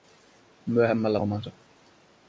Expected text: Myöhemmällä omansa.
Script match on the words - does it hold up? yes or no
yes